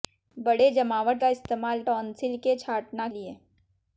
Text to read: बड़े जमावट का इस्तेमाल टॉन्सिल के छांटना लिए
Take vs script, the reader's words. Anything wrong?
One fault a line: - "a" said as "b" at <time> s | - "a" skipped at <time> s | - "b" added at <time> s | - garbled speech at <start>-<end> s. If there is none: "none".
none